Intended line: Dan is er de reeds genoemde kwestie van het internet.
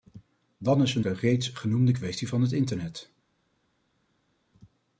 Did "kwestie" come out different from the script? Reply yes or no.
no